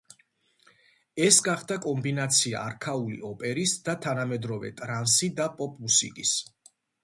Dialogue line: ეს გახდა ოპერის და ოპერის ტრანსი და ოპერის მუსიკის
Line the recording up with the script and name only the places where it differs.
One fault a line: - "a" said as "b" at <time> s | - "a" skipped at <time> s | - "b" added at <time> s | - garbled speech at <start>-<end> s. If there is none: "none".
- "კომბინაცია არქაული" added at 1.9 s
- "ოპერის" said as "თანამედროვე" at 4.1 s
- "ოპერის" said as "პოპ" at 5.6 s